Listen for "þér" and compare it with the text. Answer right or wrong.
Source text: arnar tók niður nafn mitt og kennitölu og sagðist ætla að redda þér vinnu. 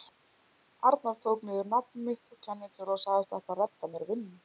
wrong